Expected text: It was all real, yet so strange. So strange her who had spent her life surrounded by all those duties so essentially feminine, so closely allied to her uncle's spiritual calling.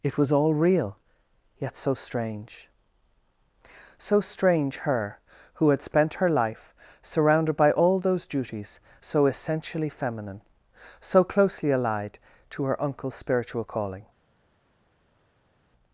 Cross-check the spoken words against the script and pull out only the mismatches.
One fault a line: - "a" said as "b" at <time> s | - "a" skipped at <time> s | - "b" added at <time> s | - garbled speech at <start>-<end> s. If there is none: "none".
none